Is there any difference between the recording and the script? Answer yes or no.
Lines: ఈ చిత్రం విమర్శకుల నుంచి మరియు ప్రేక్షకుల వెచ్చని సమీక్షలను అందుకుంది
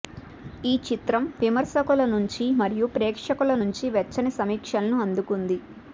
yes